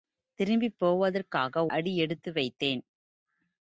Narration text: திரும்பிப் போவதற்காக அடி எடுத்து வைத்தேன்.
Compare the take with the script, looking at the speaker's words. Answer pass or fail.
pass